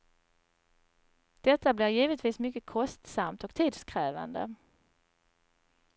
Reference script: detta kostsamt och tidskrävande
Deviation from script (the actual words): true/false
true